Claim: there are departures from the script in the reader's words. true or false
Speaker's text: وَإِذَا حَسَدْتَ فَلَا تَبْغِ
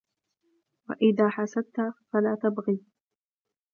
false